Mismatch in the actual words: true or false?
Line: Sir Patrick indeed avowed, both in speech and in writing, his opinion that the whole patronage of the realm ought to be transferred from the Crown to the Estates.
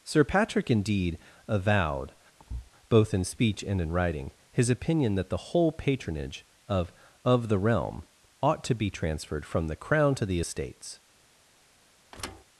true